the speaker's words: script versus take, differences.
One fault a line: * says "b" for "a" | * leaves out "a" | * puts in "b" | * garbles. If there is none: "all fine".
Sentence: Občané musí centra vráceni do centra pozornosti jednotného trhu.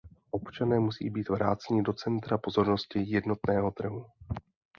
* says "být" for "centra"